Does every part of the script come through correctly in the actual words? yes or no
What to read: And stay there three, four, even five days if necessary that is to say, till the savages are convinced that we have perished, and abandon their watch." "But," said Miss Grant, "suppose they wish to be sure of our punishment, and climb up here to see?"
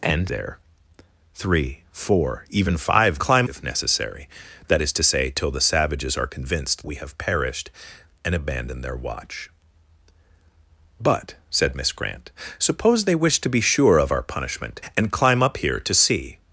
no